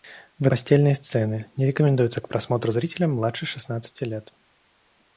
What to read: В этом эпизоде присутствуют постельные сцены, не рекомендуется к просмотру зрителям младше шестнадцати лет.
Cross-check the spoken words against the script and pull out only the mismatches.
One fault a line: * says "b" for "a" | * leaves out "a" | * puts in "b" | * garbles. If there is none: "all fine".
* leaves out "этом эпизоде присутствуют"